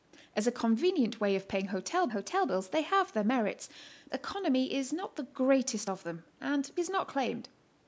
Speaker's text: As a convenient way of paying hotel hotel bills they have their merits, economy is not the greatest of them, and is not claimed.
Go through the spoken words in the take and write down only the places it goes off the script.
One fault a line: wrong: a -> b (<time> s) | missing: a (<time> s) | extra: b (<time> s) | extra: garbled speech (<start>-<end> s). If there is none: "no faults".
no faults